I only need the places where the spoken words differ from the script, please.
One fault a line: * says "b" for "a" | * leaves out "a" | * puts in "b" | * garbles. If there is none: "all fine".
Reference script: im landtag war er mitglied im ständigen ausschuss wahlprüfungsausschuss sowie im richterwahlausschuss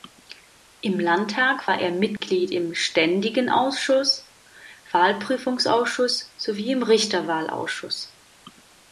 all fine